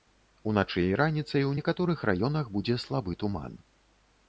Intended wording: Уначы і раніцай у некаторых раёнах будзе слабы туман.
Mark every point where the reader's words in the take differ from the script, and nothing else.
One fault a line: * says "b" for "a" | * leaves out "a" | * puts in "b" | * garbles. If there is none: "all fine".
all fine